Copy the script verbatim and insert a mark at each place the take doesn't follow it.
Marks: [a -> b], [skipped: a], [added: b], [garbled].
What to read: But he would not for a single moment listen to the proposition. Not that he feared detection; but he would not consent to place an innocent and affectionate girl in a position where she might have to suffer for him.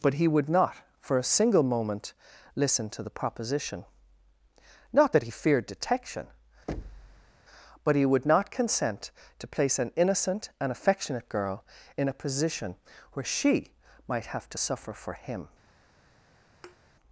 But he would not for a single moment listen to the proposition. Not that he feared detection; but he would not consent to place an innocent and affectionate girl in a position where she might have to suffer for him.